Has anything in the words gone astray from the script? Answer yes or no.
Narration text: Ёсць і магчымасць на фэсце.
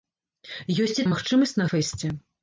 no